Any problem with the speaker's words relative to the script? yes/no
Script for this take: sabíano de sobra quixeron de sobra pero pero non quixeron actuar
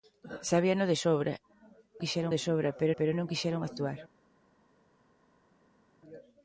no